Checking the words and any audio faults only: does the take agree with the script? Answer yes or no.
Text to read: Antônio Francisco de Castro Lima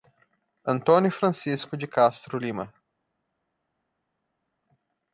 yes